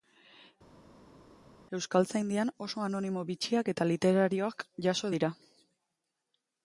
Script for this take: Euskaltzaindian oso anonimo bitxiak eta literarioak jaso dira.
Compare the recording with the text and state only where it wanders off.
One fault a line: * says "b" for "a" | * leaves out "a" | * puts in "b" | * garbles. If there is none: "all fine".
all fine